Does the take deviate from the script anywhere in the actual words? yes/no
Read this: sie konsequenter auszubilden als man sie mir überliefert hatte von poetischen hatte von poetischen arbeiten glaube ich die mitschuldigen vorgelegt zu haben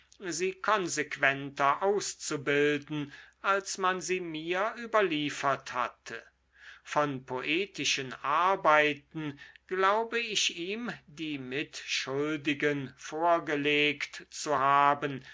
yes